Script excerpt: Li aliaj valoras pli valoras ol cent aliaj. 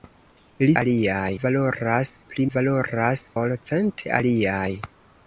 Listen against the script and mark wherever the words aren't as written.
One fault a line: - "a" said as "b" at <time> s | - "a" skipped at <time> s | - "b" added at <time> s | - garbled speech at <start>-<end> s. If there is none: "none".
none